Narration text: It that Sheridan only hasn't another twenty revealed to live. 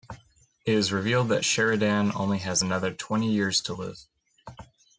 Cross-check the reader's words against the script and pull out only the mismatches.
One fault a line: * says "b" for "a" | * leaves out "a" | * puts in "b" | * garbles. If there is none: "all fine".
* puts in "is revealed"
* says "has" for "hasn't"
* says "years" for "revealed"